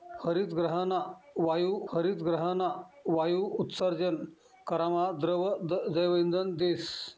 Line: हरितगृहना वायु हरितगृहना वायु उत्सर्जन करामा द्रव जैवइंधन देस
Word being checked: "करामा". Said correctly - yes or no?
yes